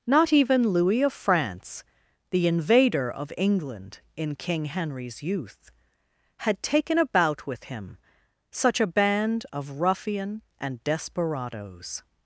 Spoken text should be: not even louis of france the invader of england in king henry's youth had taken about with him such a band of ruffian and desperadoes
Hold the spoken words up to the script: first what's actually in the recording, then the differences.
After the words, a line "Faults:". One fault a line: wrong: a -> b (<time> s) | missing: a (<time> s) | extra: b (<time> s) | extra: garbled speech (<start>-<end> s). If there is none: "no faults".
not even louis of france the invader of england in king henry's youth had taken about with him such a band of ruffian and desperadoes
Faults:
no faults